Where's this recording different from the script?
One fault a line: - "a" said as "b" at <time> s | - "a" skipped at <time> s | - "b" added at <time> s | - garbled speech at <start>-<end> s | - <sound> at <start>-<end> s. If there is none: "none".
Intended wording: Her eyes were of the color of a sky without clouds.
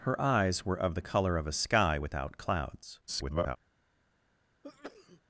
- garbled speech at 3.1-3.6 s
- sneeze at 4.6-5.2 s